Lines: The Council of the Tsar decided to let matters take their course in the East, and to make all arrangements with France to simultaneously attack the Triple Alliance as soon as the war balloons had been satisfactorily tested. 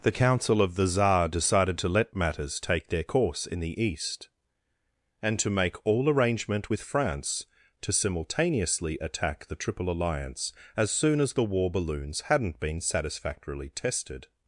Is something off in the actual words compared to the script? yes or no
yes